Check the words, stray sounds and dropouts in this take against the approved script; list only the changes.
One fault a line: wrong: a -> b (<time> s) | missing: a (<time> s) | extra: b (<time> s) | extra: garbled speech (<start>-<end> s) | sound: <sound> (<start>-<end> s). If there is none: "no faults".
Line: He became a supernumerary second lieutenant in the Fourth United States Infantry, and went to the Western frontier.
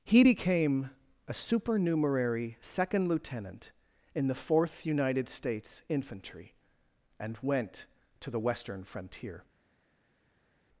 no faults